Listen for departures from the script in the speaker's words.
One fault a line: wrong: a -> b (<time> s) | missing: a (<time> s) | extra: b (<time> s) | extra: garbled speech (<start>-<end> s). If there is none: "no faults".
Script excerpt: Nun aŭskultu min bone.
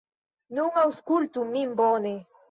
no faults